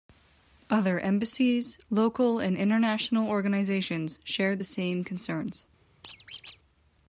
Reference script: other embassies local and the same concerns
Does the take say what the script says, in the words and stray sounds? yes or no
no